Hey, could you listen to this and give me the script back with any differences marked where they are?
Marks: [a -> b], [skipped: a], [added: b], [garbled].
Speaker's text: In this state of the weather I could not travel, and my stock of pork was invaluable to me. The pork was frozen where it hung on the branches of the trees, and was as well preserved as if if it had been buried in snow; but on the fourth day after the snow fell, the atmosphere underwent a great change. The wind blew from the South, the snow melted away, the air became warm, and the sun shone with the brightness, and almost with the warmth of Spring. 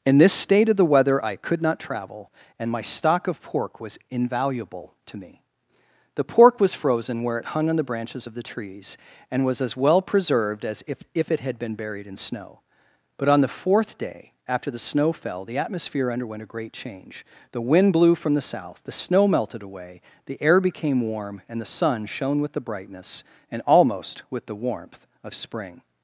In this state of the weather I could not travel, and my stock of pork was invaluable to me. The pork was frozen where it hung on the branches of the trees, and was as well preserved as if if it had been buried in snow; but on the fourth day after the snow fell, the atmosphere underwent a great change. The wind blew from the South, the snow melted away, the air became warm, and the sun shone with the brightness, and almost with the warmth of Spring.